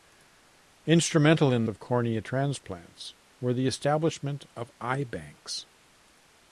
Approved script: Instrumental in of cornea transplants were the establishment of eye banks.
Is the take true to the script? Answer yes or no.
yes